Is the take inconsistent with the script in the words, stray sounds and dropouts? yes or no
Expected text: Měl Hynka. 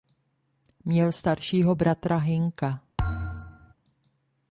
yes